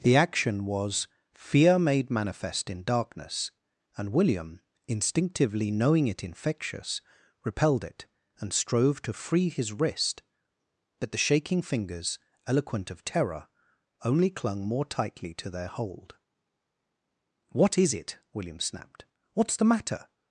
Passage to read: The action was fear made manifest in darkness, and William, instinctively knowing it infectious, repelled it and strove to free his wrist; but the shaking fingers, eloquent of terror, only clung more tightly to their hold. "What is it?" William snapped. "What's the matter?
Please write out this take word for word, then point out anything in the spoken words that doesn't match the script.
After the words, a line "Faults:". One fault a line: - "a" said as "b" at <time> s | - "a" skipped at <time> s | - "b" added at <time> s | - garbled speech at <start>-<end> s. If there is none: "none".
The action was fear made manifest in darkness, and William, instinctively knowing it infectious, repelled it and strove to free his wrist; but the shaking fingers, eloquent of terror, only clung more tightly to their hold. "What is it?" William snapped. "What's the matter?
Faults:
none